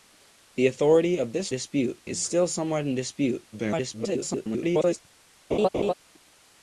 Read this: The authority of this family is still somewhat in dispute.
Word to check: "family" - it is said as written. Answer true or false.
false